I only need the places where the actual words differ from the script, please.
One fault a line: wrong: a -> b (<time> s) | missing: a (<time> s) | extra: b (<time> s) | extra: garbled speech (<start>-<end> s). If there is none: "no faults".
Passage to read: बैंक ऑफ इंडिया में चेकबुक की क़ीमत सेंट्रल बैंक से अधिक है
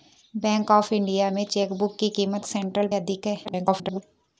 missing: बैंक से (2.9 s)
extra: garbled speech (3.4-4.0 s)